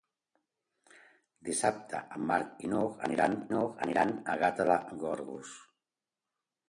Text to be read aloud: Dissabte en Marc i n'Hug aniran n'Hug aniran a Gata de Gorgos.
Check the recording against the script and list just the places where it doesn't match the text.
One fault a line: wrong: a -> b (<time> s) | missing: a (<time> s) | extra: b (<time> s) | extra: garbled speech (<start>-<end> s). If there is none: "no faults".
no faults